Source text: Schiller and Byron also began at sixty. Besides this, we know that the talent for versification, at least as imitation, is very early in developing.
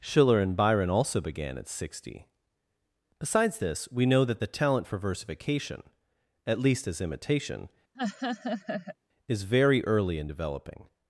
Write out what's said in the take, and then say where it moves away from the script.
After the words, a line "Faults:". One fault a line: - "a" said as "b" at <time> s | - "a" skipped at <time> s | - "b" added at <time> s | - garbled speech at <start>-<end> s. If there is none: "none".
Schiller and Byron also began at sixty. Besides this, we know that the talent for versification, at least as imitation, is very early in developing.
Faults:
none